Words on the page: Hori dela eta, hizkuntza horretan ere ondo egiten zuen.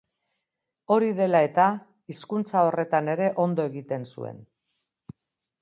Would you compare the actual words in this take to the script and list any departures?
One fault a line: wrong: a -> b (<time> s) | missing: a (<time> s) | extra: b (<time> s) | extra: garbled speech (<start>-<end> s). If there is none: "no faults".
no faults